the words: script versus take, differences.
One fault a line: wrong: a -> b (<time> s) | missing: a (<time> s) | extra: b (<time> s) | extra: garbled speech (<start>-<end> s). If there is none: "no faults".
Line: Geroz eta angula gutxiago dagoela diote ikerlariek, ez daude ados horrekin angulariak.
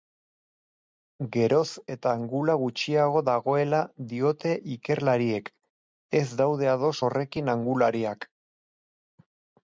no faults